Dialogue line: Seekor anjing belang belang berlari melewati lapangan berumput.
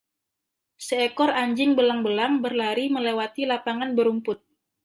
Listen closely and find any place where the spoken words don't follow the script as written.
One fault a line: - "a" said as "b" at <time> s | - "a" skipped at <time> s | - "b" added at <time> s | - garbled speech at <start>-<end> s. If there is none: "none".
none